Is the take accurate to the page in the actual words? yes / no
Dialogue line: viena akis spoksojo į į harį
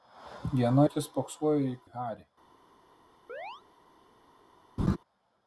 yes